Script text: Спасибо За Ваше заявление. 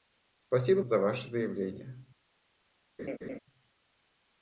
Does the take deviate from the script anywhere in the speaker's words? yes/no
no